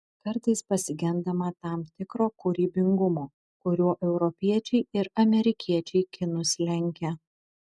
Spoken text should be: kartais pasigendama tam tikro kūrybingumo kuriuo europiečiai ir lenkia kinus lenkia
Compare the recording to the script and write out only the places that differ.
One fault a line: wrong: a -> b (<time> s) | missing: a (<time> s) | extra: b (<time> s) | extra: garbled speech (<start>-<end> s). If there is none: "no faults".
wrong: lenkia -> amerikiečiai (5.3 s)